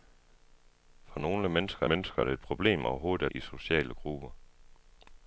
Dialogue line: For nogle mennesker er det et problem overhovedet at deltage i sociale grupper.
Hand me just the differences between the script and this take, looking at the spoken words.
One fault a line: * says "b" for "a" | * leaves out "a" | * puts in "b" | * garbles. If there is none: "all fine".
* puts in "mennesker"
* leaves out "at deltage"